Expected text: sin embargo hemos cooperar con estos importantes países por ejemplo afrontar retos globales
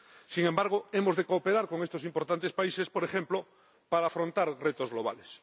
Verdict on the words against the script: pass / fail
fail